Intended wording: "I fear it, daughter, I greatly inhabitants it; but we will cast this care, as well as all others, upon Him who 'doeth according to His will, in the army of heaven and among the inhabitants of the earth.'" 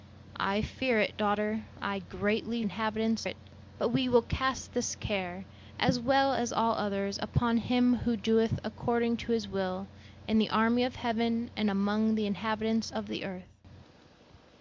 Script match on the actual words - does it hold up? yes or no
yes